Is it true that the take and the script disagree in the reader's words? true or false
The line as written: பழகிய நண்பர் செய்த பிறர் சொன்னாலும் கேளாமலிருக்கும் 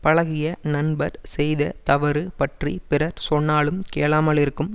true